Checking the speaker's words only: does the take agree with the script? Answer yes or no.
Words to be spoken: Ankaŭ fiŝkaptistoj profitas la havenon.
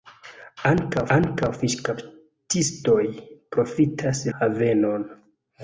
no